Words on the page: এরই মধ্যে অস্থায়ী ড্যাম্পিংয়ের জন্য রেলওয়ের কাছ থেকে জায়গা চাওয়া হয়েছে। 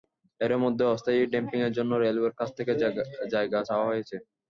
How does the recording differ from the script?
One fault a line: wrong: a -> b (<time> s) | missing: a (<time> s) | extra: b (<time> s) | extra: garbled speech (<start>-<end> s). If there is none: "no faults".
no faults